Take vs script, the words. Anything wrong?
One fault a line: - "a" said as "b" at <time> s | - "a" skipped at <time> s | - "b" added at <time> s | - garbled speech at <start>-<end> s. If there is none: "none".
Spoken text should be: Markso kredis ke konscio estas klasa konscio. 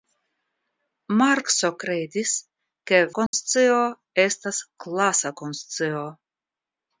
none